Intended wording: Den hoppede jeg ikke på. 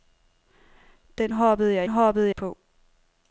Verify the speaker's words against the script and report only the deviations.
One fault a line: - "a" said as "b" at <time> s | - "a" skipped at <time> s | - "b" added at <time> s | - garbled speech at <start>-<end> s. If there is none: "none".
- "ikke" said as "hoppede" at 1.9 s